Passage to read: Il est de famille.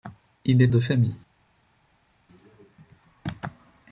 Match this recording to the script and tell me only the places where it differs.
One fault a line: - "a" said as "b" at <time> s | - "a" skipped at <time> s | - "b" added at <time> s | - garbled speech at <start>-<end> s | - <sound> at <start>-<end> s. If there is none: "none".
none